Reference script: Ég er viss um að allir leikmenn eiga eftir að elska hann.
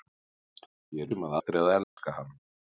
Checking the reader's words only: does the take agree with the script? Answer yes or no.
no